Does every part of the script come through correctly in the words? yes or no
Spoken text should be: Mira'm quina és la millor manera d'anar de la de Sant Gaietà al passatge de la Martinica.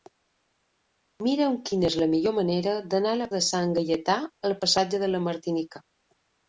yes